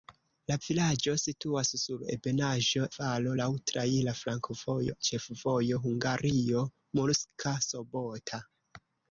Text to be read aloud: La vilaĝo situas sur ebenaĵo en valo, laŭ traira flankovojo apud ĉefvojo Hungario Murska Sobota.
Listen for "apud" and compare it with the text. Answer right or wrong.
wrong